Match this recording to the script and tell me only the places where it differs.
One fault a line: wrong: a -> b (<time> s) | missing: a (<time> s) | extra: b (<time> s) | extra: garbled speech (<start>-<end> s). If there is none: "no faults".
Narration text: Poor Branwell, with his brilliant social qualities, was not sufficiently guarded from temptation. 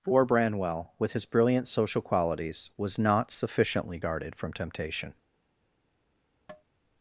no faults